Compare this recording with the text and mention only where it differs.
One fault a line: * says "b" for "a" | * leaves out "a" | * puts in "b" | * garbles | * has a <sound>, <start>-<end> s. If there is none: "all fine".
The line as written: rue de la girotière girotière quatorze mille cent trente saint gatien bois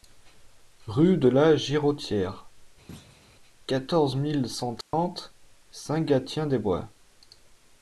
* leaves out "girotière"
* has a thud, 2.9-3.2 s
* has a dropout, 4.8-4.9 s
* puts in "des"